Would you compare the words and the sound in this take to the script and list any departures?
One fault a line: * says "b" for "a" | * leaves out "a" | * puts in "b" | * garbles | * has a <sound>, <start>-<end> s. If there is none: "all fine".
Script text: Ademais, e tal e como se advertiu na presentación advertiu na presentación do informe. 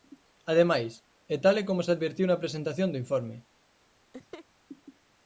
* leaves out "advertiu na presentación"
* has a laugh, 4.1-4.4 s